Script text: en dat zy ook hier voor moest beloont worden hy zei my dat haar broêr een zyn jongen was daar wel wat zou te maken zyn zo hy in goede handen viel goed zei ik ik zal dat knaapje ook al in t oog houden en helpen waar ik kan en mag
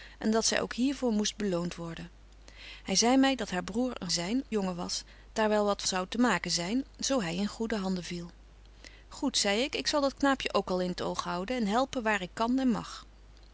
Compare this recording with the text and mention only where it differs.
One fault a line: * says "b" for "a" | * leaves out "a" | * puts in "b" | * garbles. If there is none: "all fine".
all fine